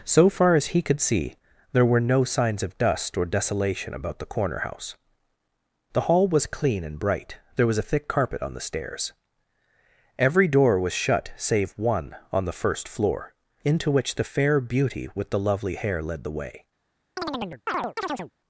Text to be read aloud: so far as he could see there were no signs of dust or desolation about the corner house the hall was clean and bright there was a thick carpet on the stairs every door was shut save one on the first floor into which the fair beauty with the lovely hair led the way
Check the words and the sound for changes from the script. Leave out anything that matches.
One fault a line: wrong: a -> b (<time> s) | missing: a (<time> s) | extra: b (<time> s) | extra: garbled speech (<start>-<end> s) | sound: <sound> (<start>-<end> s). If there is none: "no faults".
sound: chirp (17.2-18.3 s)